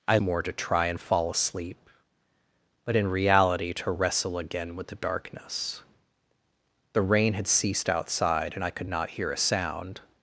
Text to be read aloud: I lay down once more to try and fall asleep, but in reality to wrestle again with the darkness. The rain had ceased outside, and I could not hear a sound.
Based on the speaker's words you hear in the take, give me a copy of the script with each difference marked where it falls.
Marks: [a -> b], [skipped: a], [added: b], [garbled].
I [skipped: lay down once] more to try and fall asleep, but in reality to wrestle again with the darkness. The rain had ceased outside, and I could not hear a sound.